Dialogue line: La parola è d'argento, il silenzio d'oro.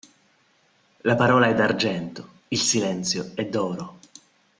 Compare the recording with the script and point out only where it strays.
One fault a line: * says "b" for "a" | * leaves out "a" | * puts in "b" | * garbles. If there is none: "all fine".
* puts in "è"